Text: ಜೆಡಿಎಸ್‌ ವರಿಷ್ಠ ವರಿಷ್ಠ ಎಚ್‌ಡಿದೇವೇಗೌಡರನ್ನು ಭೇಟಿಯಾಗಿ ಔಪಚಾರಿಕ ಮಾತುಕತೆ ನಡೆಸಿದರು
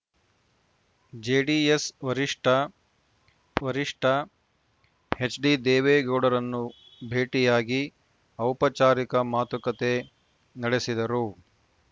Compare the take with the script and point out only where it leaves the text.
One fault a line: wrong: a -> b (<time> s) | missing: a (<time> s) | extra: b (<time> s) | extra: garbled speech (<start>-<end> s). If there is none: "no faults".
no faults